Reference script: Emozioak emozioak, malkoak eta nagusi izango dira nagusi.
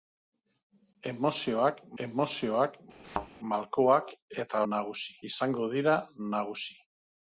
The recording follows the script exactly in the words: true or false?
true